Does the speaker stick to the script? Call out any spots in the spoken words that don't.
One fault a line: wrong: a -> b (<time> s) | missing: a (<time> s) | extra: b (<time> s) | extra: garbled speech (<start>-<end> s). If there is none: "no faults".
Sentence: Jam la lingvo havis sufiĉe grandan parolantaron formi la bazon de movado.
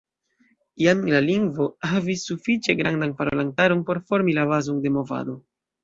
extra: por (3.9 s)